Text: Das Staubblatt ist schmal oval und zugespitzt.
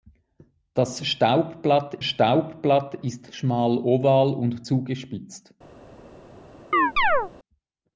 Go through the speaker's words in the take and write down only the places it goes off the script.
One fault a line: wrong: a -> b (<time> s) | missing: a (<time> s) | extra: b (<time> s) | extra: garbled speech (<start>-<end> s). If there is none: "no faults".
extra: Staubblatt (2.0 s)